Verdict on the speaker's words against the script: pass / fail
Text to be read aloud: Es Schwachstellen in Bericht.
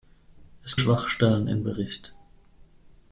pass